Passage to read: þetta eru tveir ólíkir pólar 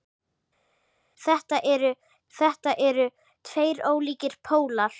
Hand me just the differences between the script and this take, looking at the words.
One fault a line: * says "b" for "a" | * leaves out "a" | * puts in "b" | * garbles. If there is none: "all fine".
* puts in "þetta eru"